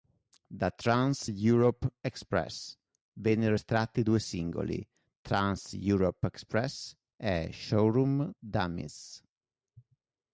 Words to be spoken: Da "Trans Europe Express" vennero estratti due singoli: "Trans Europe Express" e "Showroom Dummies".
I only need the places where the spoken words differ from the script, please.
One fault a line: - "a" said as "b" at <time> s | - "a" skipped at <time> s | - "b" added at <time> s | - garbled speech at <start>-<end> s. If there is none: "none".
none